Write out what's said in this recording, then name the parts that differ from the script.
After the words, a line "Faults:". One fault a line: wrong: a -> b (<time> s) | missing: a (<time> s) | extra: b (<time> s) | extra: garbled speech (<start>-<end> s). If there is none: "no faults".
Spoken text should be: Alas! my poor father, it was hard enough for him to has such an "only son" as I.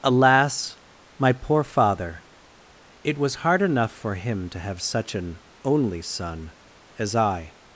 Alas! my poor father, it was hard enough for him to have such an "only son" as I.
Faults:
wrong: has -> have (4.6 s)